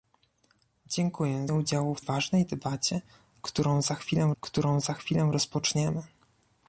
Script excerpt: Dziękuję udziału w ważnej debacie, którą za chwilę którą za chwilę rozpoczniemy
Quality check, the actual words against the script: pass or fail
pass